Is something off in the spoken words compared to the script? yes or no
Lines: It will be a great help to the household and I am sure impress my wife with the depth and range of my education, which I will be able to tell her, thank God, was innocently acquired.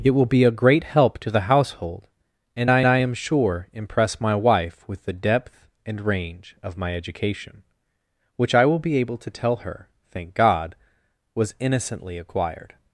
yes